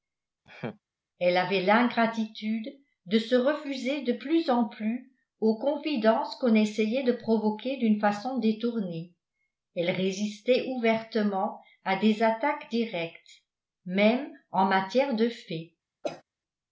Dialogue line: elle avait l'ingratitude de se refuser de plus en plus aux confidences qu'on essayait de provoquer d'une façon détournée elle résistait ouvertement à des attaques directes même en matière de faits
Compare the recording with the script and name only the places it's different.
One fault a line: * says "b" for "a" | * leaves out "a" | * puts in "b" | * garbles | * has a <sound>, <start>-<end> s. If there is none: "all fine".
* has a laugh, 0.5-0.8 s
* has a cough, 16.0-16.2 s